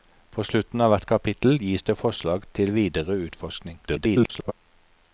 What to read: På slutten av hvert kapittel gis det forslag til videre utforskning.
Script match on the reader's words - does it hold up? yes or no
no